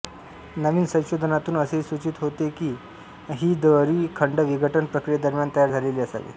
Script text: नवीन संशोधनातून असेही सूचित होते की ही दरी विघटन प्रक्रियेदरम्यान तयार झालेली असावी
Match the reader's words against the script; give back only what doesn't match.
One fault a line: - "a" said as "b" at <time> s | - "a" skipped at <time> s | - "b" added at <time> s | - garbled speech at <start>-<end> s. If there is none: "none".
- "खंड" added at 4.2 s